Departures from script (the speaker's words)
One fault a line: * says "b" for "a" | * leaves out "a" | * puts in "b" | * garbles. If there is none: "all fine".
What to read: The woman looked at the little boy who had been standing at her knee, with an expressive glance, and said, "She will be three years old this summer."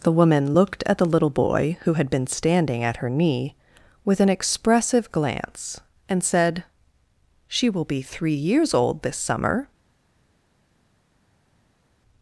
all fine